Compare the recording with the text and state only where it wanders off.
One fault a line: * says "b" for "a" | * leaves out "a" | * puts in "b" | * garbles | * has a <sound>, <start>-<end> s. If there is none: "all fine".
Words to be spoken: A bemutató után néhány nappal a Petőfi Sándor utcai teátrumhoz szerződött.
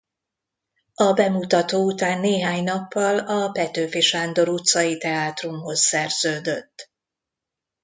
all fine